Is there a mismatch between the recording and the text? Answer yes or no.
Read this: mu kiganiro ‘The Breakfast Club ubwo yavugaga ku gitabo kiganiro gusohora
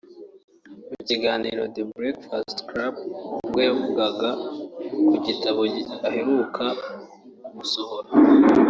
yes